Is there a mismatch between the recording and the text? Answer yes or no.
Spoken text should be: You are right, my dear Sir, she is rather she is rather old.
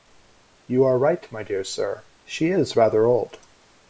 yes